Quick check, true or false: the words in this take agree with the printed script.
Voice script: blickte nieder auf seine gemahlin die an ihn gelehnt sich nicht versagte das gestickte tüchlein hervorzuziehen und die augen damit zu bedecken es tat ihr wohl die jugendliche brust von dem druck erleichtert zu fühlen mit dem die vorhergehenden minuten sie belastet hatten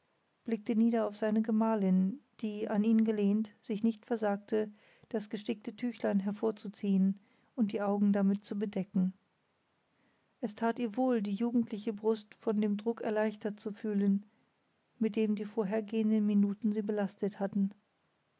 true